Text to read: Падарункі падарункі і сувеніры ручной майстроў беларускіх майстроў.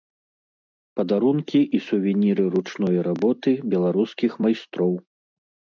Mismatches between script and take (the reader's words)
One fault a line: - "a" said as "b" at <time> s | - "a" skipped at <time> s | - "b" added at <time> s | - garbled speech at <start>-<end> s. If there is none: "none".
- "падарункі" skipped at 1.6 s
- "майстроў" said as "работы" at 3.1 s